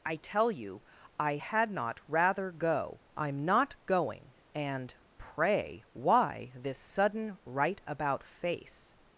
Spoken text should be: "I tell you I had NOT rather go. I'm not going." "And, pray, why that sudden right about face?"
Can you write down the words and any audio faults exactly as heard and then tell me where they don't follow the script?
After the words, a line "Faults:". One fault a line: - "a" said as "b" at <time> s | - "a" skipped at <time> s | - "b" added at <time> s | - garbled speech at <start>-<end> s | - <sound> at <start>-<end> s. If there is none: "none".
"I tell you I had NOT rather go. I'm not going." "And, pray, why this sudden right about face?"
Faults:
- "that" said as "this" at 6.5 s